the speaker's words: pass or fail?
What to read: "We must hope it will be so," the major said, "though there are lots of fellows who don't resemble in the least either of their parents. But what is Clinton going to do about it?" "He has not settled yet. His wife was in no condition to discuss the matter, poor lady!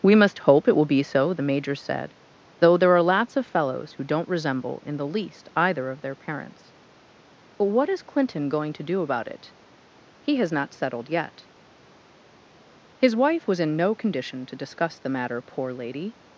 pass